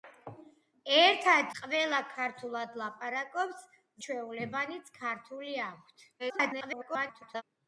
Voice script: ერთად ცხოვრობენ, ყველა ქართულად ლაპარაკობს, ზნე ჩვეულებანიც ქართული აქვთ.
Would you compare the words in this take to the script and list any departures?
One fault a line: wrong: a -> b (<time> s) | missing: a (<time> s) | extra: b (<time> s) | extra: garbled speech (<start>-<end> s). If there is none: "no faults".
missing: ცხოვრობენ (1.5 s)
missing: ზნე (3.7 s)
extra: garbled speech (6.2-7.4 s)